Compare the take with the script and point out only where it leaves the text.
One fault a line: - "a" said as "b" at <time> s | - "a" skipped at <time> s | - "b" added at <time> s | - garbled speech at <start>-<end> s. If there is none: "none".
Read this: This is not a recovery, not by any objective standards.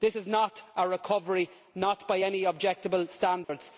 none